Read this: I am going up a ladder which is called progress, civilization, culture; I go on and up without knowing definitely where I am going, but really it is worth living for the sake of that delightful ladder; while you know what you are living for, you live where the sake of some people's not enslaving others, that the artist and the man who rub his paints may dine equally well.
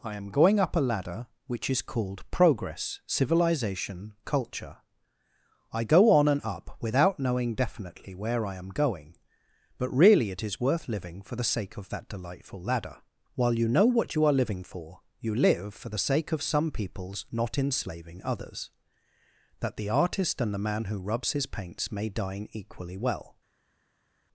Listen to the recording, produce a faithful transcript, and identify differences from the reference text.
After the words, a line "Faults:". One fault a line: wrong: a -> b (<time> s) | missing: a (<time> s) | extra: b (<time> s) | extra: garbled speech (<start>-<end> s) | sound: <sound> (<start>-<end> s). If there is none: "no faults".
I am going up a ladder which is called progress, civilization, culture; I go on and up without knowing definitely where I am going, but really it is worth living for the sake of that delightful ladder; while you know what you are living for, you live for the sake of some people's not enslaving others, that the artist and the man who rubs his paints may dine equally well.
Faults:
wrong: where -> for (15.7 s)
wrong: rub -> rubs (21.0 s)